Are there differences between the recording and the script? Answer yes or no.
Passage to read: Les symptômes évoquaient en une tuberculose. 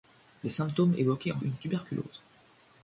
no